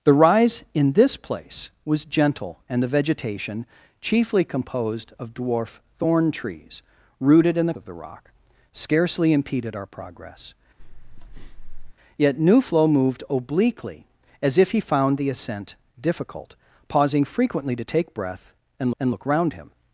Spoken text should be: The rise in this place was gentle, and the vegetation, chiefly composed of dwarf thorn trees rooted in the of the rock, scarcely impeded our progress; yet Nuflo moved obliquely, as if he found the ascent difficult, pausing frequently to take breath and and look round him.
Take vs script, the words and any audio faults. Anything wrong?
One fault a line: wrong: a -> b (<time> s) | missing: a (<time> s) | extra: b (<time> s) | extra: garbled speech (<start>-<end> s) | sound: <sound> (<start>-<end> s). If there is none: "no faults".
sound: breath (10.8-11.9 s)